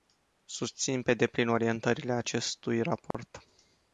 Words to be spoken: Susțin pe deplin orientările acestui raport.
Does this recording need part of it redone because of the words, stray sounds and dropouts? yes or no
yes